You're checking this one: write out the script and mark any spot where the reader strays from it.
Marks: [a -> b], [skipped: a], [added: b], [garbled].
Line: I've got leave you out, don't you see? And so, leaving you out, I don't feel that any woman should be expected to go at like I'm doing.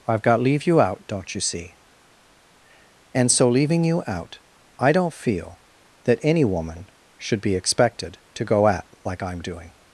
I've got leave you out, don't you see? And so, leaving you out, I don't feel that any woman should be expected to go at like I'm doing.